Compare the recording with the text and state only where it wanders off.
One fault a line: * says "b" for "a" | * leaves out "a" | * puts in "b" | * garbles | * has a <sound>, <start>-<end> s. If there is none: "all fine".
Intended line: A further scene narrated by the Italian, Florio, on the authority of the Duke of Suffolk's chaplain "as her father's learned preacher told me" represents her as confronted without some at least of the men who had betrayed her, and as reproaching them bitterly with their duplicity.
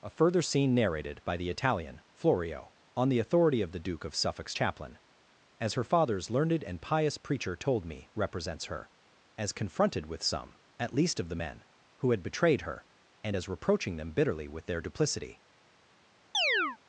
* puts in "and pious"
* says "with" for "without"
* has a chirp, 16.3-16.8 s